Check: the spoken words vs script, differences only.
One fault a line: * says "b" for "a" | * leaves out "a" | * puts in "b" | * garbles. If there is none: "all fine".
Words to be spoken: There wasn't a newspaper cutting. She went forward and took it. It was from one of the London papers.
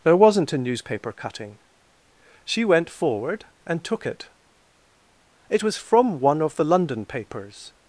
all fine